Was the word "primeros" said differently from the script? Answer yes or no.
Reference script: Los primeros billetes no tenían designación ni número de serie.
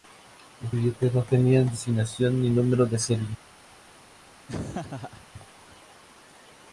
yes